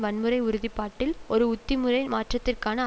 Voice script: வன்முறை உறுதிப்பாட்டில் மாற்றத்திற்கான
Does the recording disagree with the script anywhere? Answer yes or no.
yes